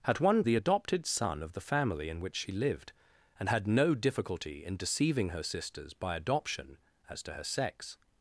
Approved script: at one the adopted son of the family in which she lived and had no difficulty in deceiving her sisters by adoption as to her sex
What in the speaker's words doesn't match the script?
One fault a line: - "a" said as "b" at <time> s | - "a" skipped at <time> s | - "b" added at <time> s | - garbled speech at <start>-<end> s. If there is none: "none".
none